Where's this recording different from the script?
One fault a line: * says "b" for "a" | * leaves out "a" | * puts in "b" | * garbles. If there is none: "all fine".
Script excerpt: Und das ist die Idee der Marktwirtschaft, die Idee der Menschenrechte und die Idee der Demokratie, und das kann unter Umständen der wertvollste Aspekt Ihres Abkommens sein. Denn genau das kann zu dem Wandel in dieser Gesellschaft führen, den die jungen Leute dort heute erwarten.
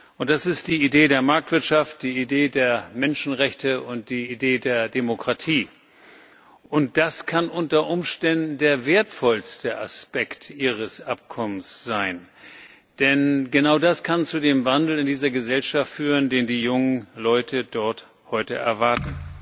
all fine